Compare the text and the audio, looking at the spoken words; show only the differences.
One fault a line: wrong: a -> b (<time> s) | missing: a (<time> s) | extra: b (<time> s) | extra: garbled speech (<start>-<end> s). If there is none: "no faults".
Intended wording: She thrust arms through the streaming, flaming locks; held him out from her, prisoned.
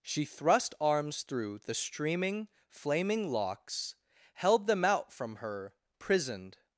wrong: him -> them (4.7 s)